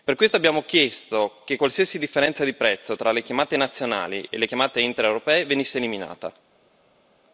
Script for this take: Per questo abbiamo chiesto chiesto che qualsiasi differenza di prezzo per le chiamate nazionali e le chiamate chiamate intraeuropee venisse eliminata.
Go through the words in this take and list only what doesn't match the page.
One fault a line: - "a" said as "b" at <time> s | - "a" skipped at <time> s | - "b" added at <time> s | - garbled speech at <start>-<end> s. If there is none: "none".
- "chiesto" skipped at 1.4 s
- "per" said as "tra" at 2.9 s
- "chiamate" skipped at 4.8 s